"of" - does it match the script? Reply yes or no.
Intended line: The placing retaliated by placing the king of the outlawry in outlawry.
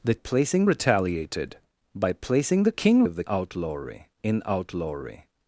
yes